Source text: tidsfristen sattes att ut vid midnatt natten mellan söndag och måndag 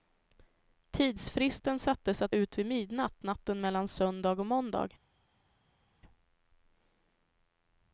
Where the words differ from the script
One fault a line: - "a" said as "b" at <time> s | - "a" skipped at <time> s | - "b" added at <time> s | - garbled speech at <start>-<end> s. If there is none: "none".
none